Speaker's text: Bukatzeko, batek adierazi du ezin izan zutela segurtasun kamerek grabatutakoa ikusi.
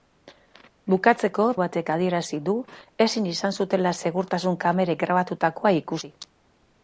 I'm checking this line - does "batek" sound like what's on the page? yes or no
yes